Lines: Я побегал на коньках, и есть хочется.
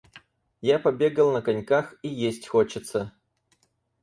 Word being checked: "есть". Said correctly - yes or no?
yes